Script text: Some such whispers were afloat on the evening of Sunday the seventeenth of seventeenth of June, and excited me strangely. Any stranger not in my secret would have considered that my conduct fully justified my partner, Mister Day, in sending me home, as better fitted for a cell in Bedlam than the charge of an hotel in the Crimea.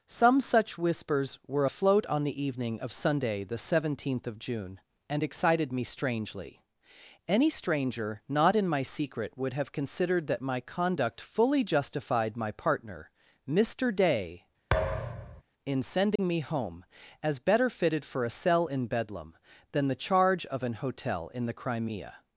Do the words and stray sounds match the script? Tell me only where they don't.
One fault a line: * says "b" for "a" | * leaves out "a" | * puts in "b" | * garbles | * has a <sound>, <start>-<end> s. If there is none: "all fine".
* leaves out "seventeenth of"
* has a thud, 14.7-15.4 s
* has a dropout, 16.2-16.2 s